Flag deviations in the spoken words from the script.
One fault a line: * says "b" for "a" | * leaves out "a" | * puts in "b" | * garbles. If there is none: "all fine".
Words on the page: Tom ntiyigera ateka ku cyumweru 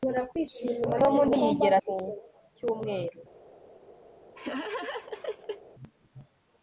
* leaves out "ateka"